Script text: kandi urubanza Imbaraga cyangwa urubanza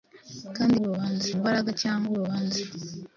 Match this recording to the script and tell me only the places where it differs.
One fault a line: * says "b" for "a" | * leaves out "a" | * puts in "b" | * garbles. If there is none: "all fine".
all fine